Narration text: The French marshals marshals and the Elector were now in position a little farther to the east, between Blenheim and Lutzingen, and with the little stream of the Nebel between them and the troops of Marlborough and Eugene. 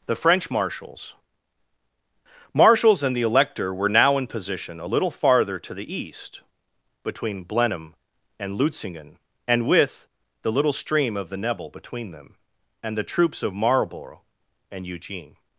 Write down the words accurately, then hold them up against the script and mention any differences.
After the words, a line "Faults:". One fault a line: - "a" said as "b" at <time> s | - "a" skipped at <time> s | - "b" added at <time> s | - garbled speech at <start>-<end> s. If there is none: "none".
The French marshals marshals and the Elector were now in position a little farther to the east, between Blenheim and Lutzingen, and with the little stream of the Nebel between them and the troops of Marlborough and Eugene.
Faults:
none